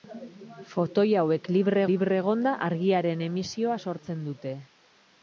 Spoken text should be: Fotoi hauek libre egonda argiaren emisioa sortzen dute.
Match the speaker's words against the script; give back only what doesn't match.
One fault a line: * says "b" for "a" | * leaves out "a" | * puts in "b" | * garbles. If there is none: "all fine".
* puts in "libre"